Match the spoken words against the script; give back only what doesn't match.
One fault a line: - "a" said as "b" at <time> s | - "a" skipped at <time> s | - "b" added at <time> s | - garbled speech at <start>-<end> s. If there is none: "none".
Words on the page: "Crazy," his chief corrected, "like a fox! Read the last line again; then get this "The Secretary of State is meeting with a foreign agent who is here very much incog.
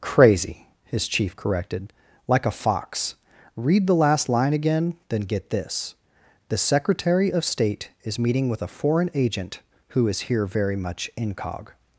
none